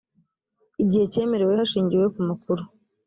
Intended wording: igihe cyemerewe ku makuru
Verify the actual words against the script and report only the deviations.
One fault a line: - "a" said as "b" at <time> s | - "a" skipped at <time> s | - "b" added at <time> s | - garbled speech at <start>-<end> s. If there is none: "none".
- "hashingiwe" added at 1.6 s